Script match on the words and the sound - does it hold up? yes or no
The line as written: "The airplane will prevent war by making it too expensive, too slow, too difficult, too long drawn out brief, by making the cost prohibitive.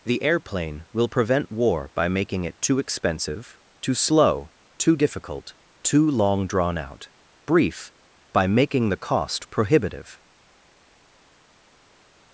yes